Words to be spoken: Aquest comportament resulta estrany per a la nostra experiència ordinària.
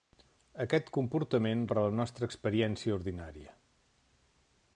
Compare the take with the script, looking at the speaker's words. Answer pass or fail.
fail